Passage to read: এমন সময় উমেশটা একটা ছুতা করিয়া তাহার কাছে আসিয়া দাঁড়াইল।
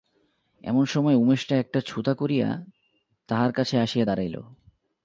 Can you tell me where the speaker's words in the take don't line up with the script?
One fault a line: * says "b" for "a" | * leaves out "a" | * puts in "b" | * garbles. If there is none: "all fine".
all fine